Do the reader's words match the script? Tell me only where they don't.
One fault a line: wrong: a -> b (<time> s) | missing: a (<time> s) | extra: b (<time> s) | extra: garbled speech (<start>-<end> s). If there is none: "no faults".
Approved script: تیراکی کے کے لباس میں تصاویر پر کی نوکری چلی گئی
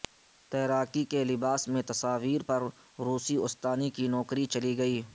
missing: کے (1.2 s)
extra: روسی استانی (3.0 s)